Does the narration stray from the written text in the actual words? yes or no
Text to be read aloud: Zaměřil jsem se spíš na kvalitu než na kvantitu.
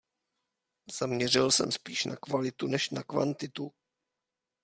yes